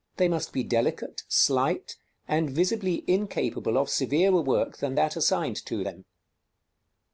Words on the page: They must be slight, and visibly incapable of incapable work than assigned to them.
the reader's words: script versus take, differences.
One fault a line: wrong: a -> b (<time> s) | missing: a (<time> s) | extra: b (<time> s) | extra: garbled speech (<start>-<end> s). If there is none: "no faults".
extra: delicate (0.6 s)
wrong: incapable -> severer (3.9 s)
extra: that (4.9 s)